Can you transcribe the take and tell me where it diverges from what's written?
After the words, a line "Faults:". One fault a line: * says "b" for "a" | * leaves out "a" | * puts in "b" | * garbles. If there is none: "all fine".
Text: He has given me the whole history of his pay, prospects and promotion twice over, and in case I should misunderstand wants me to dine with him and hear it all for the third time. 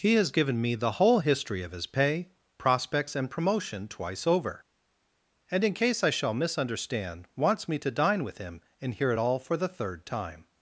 He has given me the whole history of his pay, prospects and promotion twice over, and in case I shall misunderstand wants me to dine with him and hear it all for the third time.
Faults:
* says "shall" for "should"